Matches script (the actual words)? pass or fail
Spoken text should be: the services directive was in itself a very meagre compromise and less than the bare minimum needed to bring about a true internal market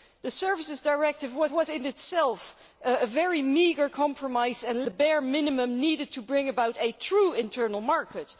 fail